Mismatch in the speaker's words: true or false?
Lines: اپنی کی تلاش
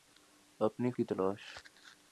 false